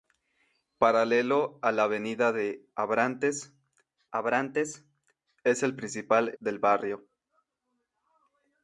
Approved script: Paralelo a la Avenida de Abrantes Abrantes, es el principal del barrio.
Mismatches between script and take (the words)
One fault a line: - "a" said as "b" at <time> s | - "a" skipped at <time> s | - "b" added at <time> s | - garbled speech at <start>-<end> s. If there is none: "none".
none